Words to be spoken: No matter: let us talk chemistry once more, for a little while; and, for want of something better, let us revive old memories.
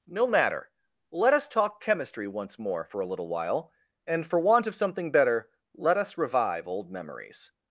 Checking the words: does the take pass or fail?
pass